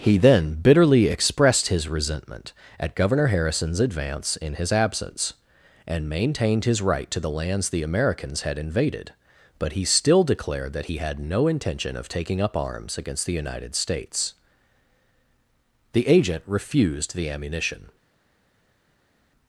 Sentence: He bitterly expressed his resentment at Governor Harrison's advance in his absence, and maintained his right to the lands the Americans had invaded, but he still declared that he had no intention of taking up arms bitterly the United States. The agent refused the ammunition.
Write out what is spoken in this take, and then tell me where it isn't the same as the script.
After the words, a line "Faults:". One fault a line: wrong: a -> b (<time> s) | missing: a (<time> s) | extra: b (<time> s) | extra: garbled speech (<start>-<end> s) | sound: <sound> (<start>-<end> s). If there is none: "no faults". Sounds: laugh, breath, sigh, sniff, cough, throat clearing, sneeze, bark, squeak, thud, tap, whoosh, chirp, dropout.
He then bitterly expressed his resentment at Governor Harrison's advance in his absence, and maintained his right to the lands the Americans had invaded, but he still declared that he had no intention of taking up arms against the United States. The agent refused the ammunition.
Faults:
extra: then (0.2 s)
wrong: bitterly -> against (13.0 s)